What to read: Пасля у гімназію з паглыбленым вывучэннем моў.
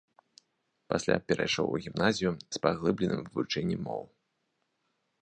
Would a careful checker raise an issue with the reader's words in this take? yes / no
yes